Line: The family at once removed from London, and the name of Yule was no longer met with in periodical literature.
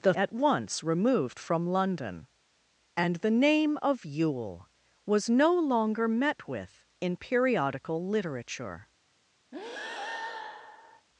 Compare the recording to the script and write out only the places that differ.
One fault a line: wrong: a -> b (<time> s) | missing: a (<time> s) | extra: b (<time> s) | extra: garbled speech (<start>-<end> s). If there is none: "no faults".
missing: family (0.1 s)